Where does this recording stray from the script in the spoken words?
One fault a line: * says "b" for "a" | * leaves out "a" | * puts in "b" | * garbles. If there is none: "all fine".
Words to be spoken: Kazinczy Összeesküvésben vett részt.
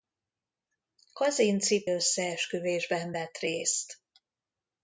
all fine